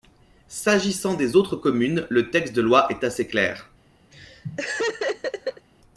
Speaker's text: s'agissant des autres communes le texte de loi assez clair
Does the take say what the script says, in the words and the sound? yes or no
no